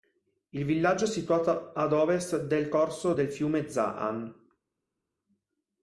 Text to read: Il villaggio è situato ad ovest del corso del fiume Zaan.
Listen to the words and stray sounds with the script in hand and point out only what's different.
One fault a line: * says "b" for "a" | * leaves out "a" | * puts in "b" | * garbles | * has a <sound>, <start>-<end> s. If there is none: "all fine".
all fine